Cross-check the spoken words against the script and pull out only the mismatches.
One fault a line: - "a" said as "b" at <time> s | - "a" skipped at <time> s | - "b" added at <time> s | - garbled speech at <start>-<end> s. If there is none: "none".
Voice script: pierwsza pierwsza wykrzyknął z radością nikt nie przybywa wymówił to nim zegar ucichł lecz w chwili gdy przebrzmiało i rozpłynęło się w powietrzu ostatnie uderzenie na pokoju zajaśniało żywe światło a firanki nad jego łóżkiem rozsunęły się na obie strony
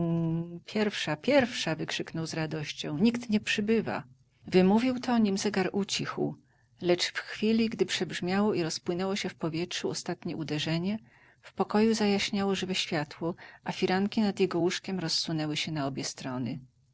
- "na" said as "w" at 11.4 s